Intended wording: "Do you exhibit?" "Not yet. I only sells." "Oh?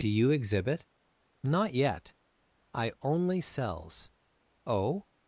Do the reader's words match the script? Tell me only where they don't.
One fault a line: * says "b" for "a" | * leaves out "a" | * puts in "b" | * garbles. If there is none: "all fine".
all fine